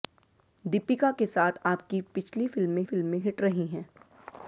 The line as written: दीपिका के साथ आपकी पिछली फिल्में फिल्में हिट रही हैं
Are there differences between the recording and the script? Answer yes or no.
no